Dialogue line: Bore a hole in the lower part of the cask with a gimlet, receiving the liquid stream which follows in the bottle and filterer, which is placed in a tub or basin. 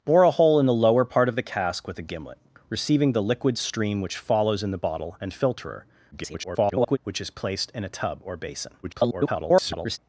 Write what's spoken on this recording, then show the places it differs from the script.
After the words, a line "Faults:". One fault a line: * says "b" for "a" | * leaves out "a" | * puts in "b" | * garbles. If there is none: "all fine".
Bore a hole in the lower part of the cask with a gimlet, receiving the liquid stream which follows in the bottle and filterer, [garbled] which is placed in a tub or basin. [garbled]
Faults:
* garbles
* garbles